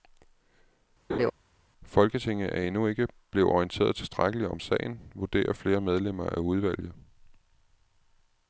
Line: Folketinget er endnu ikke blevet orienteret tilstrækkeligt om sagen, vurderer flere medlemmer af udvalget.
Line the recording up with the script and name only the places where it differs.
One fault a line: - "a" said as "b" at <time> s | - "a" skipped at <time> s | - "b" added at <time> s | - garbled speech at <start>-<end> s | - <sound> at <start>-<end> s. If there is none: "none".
- laugh at 1.1-1.3 s